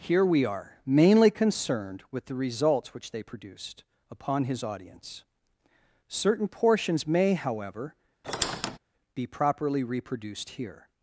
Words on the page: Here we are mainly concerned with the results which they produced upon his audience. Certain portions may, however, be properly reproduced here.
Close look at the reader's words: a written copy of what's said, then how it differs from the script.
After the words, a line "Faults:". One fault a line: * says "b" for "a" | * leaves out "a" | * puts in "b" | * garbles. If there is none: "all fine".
Here we are mainly concerned with the results which they produced upon his audience. Certain portions may, however, be properly reproduced here.
Faults:
all fine